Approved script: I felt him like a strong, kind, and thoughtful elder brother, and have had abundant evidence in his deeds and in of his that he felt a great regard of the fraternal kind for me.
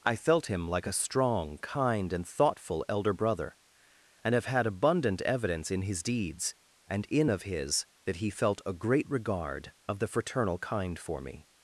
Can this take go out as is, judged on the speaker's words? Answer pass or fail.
pass